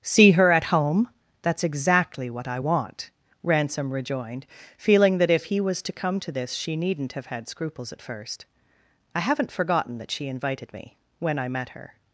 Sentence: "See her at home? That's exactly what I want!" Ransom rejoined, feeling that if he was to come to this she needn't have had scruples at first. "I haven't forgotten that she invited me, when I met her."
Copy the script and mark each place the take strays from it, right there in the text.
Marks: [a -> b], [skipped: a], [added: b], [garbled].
"See her at home? That's exactly what I want!" Ransom rejoined, feeling that if he was to come to this she needn't have had scruples at first. "I haven't forgotten that she invited me, when I met her."